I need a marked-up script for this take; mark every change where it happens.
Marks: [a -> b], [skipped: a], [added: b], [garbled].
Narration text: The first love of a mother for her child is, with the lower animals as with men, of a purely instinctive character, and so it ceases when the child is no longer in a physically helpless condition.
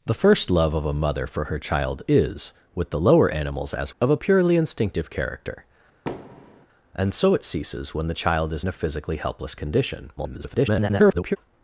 The first love of a mother for her child is, with the lower animals as [skipped: with men,] of a purely instinctive character, and so it ceases when the child is [skipped: no longer in] a physically helpless condition. [garbled]